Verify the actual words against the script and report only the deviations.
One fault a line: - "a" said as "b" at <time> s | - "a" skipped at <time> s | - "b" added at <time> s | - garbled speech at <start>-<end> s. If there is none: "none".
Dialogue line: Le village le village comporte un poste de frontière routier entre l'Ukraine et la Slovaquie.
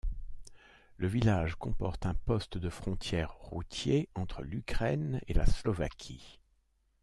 - "le village" skipped at 1.5 s